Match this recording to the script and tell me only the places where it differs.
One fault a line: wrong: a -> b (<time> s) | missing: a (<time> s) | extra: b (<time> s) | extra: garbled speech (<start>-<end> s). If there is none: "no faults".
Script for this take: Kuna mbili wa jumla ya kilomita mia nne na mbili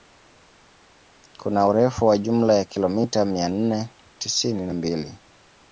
wrong: mbili -> urefu (1.7 s)
extra: tisini (4.2 s)